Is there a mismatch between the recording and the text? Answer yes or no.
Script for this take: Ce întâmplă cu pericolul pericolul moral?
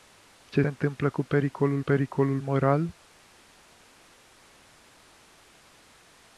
no